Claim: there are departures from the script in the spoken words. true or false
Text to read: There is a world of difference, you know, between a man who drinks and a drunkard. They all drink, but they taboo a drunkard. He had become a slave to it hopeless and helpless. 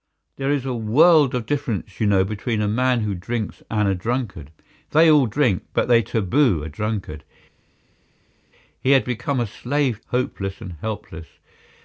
true